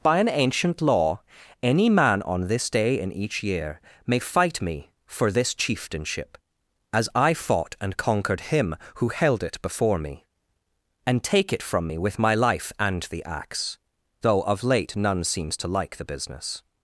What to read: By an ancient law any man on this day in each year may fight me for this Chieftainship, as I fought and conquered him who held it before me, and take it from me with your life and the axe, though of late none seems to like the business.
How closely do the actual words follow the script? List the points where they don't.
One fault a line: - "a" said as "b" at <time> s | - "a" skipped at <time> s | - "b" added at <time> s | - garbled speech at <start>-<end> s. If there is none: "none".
- "your" said as "my" at 12.2 s